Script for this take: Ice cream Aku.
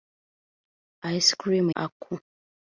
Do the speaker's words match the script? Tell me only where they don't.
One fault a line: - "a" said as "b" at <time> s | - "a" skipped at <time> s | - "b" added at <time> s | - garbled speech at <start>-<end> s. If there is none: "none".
none